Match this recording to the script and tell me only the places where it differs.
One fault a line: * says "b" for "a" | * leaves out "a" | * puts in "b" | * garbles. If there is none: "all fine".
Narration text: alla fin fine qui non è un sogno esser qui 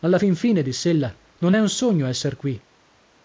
* says "diss'ella" for "qui"